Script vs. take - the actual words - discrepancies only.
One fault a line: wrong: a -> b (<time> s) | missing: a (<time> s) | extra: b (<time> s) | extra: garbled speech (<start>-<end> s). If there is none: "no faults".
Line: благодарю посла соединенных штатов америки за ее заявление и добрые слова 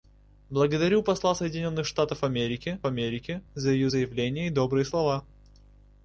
extra: америки (2.8 s)